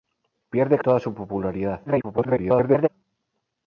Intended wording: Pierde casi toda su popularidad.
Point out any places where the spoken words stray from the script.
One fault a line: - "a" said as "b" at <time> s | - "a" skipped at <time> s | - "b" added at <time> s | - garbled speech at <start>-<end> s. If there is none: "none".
- "casi" skipped at 0.8 s
- garbled speech at 1.8-2.9 s